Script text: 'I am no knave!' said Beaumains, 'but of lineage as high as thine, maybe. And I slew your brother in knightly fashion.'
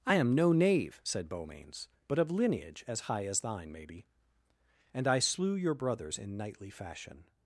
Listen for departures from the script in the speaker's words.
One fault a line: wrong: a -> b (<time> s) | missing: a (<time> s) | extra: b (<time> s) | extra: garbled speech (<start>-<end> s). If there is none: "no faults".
wrong: brother -> brothers (5.7 s)